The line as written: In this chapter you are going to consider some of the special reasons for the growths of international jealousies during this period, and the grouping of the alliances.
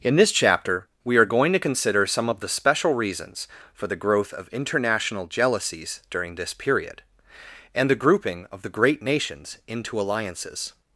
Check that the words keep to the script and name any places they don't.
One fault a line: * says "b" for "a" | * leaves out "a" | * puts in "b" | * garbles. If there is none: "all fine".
* says "we" for "you"
* says "growth" for "growths"
* puts in "great nations into"